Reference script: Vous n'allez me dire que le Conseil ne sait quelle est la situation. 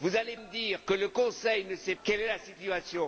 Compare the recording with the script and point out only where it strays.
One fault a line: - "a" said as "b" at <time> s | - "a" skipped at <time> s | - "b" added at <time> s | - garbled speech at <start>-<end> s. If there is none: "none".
none